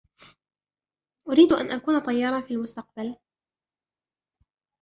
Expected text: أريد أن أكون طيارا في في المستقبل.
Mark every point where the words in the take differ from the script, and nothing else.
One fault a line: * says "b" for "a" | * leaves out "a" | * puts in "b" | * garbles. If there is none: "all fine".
* leaves out "في"